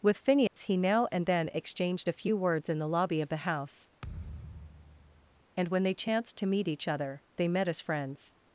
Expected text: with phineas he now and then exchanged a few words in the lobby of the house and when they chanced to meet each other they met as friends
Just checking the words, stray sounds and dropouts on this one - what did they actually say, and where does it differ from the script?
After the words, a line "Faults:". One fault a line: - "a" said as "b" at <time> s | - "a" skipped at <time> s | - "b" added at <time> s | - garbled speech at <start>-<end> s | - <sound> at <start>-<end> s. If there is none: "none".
with phineas he now and then exchanged a few words in the lobby of the house and when they chanced to meet each other they met as friends
Faults:
- dropout at 0.5-0.6 s
- thud at 4.0-5.4 s